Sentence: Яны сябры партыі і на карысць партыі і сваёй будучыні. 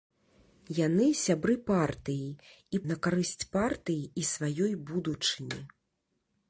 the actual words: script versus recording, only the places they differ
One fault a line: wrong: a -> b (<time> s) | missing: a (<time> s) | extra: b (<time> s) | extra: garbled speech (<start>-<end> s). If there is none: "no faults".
no faults